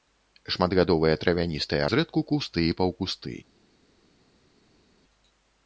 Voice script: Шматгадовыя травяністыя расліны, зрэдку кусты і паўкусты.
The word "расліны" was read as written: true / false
false